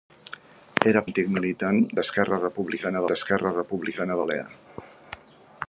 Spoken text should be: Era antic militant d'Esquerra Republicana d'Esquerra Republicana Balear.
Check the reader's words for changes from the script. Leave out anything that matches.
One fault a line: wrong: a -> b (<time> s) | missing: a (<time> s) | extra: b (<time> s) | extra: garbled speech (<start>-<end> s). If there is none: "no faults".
no faults